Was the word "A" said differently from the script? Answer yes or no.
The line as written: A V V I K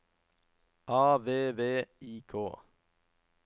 no